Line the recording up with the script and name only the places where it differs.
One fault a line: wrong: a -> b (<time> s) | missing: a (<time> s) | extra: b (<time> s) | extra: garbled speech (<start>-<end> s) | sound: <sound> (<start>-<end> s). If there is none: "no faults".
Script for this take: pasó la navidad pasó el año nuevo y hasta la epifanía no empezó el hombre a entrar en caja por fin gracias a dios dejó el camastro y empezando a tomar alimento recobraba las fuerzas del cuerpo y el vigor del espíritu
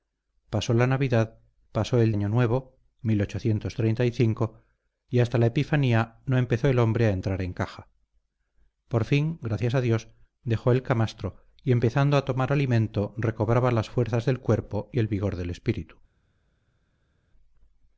no faults